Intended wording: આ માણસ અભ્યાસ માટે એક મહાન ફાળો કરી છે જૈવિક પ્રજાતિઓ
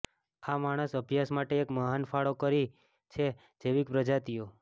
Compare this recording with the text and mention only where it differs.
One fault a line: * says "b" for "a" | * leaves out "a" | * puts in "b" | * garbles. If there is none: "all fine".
all fine